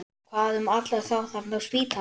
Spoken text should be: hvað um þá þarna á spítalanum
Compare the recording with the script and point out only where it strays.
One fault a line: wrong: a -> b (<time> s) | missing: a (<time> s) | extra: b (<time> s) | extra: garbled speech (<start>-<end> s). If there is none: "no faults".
extra: alla (0.8 s)